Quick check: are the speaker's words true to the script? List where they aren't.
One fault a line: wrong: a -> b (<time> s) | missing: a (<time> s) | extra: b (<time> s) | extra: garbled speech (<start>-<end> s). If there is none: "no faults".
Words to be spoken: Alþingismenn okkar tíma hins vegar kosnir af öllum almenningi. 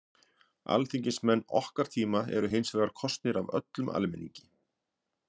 extra: eru (2.4 s)